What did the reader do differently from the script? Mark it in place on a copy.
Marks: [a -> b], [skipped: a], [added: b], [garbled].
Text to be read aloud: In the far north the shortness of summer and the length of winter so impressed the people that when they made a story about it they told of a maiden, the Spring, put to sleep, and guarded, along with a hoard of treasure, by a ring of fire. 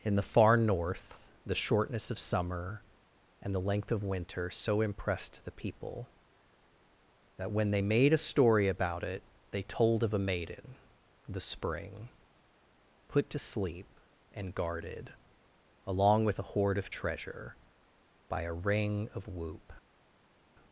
In the far north the shortness of summer and the length of winter so impressed the people that when they made a story about it they told of a maiden, the Spring, put to sleep, and guarded, along with a hoard of treasure, by a ring of [fire. -> whoop]